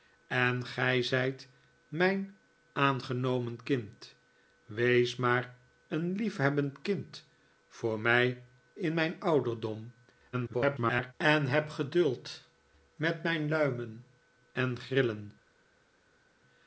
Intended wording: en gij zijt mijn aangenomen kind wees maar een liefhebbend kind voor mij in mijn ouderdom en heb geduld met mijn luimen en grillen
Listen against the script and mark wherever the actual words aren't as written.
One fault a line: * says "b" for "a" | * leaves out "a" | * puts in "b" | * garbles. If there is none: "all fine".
* garbles